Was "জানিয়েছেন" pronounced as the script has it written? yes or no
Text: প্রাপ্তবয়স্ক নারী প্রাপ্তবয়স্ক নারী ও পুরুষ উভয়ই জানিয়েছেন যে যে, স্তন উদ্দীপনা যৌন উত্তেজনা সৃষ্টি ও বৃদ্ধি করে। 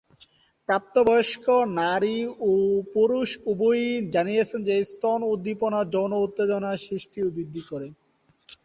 yes